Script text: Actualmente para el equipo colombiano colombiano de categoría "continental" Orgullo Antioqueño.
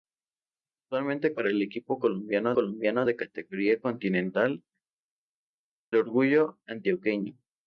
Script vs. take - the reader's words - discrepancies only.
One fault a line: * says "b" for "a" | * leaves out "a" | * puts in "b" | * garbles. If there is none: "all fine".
all fine